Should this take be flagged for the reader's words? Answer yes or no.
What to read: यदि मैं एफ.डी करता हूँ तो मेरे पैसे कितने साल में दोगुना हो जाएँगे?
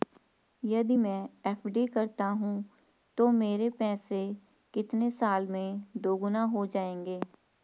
no